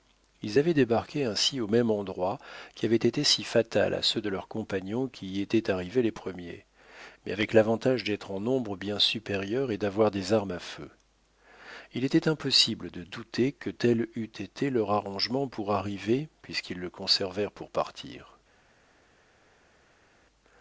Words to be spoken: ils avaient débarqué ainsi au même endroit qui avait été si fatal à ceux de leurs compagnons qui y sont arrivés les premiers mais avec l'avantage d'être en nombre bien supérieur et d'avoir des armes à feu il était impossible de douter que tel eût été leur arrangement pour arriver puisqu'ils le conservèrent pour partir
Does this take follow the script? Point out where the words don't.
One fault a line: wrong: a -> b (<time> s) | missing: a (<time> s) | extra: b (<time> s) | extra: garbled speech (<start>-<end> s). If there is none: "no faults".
wrong: sont -> étaient (5.4 s)